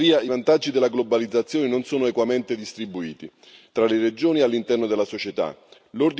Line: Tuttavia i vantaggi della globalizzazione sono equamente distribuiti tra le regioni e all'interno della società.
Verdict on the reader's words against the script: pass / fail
fail